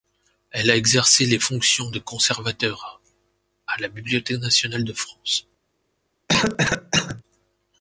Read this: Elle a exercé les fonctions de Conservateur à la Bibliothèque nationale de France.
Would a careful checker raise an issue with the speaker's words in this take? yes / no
no